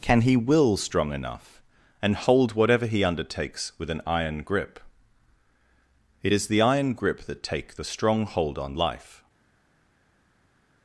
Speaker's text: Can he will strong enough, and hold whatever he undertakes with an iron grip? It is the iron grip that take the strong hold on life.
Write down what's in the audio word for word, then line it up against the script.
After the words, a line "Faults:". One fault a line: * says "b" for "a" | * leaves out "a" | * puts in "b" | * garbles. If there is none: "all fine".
Can he will strong enough, and hold whatever he undertakes with an iron grip? It is the iron grip that take the strong hold on life.
Faults:
all fine